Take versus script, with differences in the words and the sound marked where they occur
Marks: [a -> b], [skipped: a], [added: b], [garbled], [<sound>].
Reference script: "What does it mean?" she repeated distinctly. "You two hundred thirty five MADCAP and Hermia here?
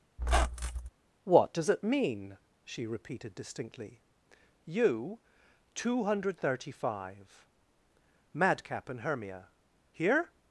[squeak] "What does it mean?" she repeated distinctly. "You two hundred thirty five MADCAP and Hermia here?